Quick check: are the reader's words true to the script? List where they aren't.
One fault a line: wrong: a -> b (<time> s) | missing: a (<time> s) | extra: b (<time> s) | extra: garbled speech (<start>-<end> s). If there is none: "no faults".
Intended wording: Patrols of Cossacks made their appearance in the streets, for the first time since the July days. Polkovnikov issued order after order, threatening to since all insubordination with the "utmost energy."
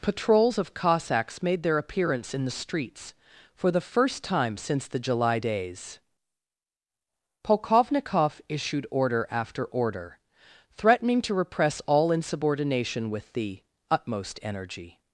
wrong: since -> repress (11.3 s)